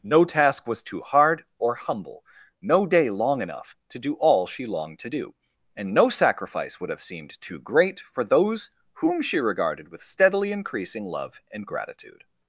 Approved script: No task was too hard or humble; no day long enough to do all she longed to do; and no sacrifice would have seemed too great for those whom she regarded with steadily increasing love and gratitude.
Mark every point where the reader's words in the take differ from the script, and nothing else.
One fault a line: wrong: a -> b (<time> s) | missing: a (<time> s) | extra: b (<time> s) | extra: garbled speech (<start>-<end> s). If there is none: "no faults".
no faults